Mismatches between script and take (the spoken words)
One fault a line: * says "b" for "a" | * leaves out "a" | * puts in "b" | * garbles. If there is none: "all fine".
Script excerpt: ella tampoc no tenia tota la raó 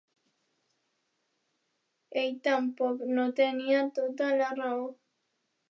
* says "ell" for "ella"